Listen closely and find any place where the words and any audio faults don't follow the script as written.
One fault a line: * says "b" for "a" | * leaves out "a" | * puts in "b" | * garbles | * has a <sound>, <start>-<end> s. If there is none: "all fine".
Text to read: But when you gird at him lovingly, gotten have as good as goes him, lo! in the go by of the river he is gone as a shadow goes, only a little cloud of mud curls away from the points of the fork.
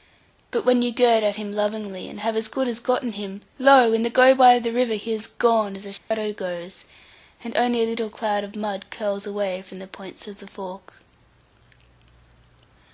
* says "and" for "gotten"
* says "gotten" for "goes"
* has a dropout, 6.0-6.1 s
* puts in "and"